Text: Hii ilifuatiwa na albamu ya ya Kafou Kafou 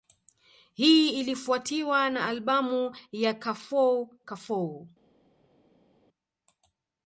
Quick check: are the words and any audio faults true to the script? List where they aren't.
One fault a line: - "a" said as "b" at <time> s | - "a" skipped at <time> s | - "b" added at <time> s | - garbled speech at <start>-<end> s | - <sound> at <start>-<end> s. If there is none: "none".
- "ya" skipped at 3.3 s